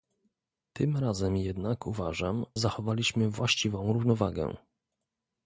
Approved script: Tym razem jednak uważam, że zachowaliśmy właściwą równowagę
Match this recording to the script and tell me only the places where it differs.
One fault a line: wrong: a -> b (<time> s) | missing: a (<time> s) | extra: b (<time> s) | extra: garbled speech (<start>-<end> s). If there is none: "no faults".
missing: że (2.5 s)